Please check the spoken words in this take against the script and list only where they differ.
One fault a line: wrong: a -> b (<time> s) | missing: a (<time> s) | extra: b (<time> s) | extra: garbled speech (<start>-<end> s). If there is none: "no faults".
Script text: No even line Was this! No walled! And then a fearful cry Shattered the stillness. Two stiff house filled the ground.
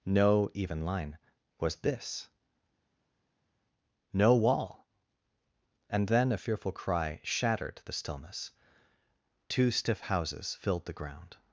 wrong: walled -> wall (4.3 s)
wrong: house -> houses (10.0 s)